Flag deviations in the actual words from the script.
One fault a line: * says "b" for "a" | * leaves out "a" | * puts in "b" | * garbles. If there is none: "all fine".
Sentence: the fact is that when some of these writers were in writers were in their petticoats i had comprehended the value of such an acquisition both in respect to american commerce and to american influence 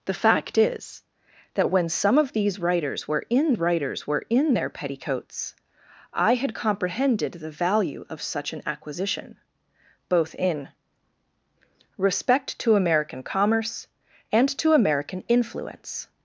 all fine